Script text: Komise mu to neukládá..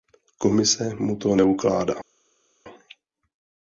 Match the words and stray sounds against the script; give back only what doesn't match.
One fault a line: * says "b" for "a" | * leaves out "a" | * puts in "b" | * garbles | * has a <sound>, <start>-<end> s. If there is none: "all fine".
all fine